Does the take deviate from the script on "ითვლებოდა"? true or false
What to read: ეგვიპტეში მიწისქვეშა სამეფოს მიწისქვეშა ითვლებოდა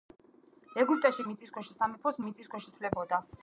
false